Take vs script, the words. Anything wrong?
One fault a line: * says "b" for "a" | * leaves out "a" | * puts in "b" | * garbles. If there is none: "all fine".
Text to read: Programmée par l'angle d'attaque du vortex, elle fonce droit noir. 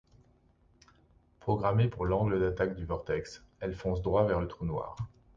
* says "pour" for "par"
* puts in "vers le trou"